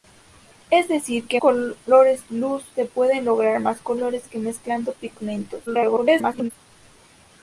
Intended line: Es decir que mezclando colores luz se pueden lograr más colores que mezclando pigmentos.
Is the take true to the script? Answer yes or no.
no